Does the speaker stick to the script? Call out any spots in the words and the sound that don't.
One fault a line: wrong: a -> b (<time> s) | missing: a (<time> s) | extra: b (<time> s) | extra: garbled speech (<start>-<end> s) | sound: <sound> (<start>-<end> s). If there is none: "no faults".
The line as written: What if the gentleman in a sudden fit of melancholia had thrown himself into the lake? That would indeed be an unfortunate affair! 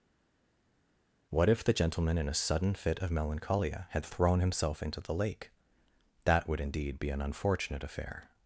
no faults